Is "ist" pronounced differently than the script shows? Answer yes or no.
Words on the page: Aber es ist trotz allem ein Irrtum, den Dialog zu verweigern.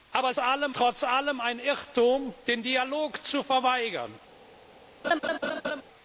yes